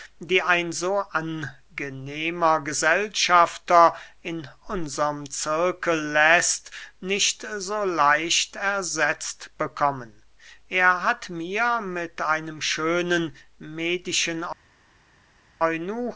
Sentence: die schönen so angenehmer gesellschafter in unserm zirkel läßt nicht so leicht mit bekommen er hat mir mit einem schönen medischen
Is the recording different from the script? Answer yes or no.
yes